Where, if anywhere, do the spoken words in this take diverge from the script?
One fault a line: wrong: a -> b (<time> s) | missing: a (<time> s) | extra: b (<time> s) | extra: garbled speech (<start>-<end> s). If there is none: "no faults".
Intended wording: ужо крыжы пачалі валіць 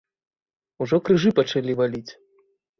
no faults